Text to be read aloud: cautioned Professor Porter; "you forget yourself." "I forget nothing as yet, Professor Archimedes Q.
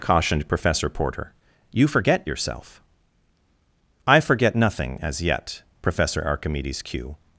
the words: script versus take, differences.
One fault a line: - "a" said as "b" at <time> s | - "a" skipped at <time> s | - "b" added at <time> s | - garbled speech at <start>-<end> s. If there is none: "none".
none